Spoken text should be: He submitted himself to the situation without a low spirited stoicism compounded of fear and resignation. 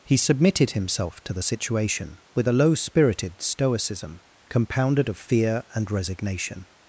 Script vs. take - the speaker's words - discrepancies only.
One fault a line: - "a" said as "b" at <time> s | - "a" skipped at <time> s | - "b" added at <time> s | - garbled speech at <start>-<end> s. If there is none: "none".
- "without" said as "with" at 2.3 s